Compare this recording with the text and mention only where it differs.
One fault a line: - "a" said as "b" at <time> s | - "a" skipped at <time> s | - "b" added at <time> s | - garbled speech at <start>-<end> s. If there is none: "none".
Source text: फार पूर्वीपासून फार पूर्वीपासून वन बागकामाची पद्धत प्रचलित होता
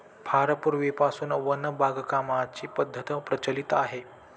- "फार पूर्वीपासून" skipped at 1.3 s
- "होता" said as "आहे" at 3.7 s